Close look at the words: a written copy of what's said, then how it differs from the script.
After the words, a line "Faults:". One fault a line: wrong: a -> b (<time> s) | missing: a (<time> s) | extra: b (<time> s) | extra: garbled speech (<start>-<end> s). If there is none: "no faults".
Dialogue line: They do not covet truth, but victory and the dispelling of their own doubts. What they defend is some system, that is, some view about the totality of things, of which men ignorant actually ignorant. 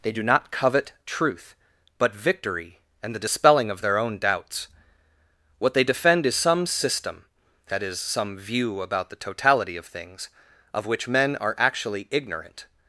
They do not covet truth, but victory and the dispelling of their own doubts. What they defend is some system, that is, some view about the totality of things, of which men are actually ignorant.
Faults:
wrong: ignorant -> are (11.4 s)